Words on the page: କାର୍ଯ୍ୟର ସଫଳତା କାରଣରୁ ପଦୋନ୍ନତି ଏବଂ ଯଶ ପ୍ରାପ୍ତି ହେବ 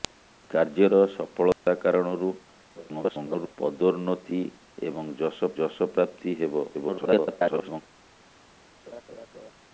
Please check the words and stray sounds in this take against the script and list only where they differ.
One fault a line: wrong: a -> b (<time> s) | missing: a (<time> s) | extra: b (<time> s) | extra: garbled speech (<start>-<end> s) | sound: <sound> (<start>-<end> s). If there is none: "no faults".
sound: dropout (1.5-1.7 s)
extra: garbled speech (2.8-3.6 s)
extra: ଯଶ (5.6 s)
extra: garbled speech (6.7-7.8 s)
sound: laugh (8.9-9.5 s)